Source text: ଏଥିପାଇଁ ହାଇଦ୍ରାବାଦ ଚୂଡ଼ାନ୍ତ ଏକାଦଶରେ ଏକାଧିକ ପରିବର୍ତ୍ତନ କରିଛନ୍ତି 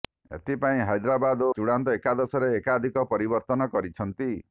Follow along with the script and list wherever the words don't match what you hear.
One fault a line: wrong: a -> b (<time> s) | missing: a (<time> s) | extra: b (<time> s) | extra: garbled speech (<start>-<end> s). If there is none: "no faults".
no faults